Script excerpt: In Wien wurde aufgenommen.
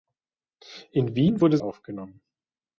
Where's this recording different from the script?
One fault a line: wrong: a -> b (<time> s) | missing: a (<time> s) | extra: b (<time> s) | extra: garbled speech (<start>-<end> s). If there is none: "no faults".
no faults